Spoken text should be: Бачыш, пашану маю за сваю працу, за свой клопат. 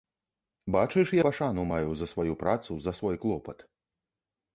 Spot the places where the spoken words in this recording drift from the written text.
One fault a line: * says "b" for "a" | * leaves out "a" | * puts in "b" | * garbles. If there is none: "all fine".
all fine